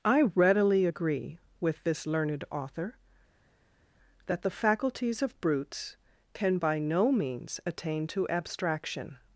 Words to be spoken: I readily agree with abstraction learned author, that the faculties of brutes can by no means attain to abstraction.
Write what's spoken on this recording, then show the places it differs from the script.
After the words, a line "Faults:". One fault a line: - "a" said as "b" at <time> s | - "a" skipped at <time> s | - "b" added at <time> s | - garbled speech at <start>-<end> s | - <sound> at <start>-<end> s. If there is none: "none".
I readily agree with this learned author, that the faculties of brutes can by no means attain to abstraction.
Faults:
- "abstraction" said as "this" at 1.8 s